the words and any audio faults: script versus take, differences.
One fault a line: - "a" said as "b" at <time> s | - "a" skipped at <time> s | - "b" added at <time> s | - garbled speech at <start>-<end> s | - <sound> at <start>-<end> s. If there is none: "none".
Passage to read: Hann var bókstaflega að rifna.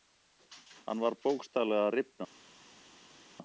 none